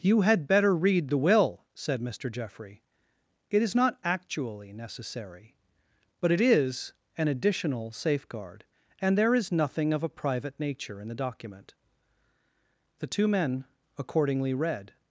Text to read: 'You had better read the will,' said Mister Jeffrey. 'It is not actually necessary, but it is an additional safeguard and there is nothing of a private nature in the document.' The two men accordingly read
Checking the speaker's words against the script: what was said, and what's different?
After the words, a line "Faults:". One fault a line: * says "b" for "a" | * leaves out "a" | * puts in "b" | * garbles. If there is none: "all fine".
'You had better read the will,' said Mister Jeffrey. 'It is not actually necessary, but it is an additional safeguard and there is nothing of a private nature in the document.' The two men accordingly read
Faults:
all fine